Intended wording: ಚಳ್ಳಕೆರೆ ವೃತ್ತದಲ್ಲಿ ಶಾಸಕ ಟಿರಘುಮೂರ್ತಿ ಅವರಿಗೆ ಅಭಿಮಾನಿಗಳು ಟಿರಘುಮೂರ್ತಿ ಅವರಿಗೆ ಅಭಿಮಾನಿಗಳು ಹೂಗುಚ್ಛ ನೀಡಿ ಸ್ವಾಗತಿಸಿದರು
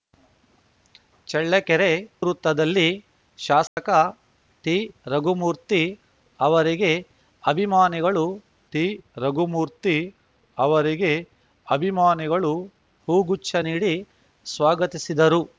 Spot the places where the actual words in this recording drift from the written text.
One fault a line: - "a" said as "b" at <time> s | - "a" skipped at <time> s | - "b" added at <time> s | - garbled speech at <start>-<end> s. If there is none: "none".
none